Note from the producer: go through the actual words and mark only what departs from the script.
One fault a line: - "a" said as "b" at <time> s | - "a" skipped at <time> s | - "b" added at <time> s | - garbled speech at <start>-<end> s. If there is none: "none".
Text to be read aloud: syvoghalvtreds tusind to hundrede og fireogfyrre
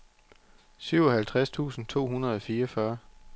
none